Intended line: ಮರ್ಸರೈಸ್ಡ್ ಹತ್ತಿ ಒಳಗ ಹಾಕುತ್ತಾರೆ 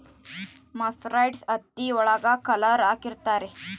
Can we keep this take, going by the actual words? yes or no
no